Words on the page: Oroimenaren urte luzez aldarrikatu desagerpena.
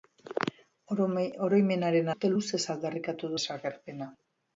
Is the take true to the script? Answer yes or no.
yes